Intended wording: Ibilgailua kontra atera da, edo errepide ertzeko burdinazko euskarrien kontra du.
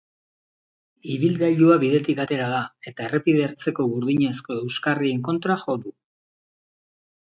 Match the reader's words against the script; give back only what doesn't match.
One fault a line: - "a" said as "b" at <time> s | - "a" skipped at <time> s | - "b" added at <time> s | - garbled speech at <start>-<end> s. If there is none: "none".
- "kontra" said as "bidetik" at 1.8 s
- "edo" said as "eta" at 2.9 s
- "jo" added at 5.7 s